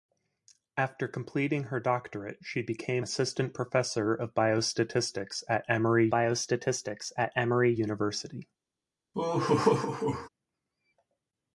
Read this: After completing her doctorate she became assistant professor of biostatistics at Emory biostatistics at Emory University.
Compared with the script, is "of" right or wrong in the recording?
right